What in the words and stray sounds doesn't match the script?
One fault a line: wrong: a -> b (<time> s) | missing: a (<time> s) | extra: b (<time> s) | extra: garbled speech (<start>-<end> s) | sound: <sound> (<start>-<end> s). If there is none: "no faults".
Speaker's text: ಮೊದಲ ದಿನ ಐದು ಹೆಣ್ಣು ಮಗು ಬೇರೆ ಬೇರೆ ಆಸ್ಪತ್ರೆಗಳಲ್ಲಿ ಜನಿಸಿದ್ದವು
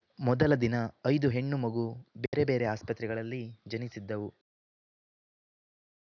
sound: dropout (2.3-2.3 s)